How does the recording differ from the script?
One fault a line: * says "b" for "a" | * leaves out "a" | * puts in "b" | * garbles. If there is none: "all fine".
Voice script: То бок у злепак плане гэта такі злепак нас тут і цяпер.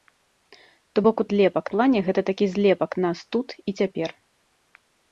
all fine